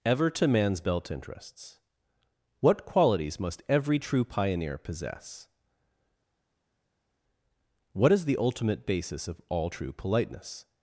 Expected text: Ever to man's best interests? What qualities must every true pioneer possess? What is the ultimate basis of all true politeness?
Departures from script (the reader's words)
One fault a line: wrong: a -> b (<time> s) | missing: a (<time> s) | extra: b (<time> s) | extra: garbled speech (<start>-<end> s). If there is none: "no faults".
wrong: best -> belt (0.8 s)